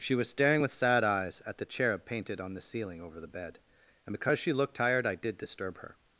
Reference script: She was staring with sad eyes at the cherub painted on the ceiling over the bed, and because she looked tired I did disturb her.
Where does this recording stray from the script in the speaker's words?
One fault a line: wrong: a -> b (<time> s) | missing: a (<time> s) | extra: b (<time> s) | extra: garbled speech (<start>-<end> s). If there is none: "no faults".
no faults